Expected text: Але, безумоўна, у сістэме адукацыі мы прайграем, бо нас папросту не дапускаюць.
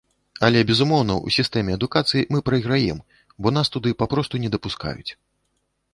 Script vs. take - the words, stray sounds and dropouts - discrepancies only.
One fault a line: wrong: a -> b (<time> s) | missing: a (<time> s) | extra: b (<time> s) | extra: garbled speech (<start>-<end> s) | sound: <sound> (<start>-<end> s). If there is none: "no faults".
extra: туды (3.8 s)